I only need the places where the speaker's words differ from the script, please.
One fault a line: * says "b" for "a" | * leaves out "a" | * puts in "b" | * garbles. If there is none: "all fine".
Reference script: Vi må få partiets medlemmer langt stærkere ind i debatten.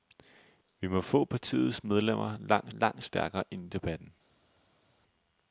* puts in "langt"